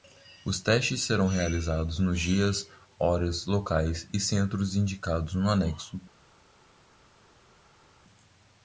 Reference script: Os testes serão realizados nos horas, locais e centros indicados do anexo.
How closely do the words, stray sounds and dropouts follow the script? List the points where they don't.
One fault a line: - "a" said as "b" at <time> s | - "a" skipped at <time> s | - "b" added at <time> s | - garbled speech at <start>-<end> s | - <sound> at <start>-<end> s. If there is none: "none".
- "dias" added at 2.2 s
- "do" said as "no" at 5.3 s